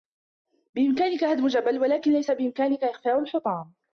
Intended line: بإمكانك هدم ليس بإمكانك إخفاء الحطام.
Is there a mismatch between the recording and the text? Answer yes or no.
yes